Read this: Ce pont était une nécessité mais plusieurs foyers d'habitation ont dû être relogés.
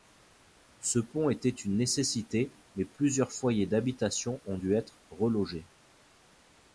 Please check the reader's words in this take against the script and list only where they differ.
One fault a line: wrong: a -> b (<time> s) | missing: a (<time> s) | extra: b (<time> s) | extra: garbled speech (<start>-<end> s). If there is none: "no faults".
no faults